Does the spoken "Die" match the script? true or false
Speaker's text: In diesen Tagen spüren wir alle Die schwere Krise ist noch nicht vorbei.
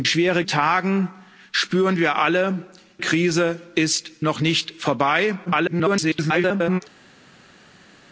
false